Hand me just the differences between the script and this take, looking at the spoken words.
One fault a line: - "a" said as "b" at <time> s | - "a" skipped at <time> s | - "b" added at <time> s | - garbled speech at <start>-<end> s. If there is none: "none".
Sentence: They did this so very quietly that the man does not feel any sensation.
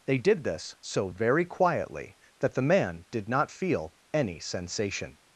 - "does" said as "did" at 3.1 s